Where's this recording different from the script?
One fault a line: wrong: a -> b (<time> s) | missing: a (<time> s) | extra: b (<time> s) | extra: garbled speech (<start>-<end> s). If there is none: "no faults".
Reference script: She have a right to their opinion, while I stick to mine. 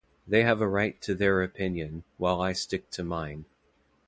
wrong: She -> They (0.3 s)